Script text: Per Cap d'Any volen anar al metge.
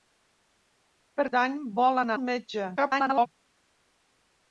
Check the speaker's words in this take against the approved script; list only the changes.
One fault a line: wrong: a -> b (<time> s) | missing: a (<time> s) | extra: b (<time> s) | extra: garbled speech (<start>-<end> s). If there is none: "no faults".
missing: Cap (1.2 s)
missing: anar (2.1 s)
extra: garbled speech (2.8-3.3 s)